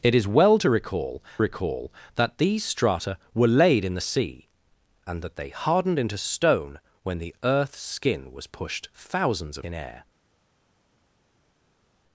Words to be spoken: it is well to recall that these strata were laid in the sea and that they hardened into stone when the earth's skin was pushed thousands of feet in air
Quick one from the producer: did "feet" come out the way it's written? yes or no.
no